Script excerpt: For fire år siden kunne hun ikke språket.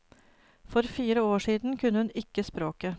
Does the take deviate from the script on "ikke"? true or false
false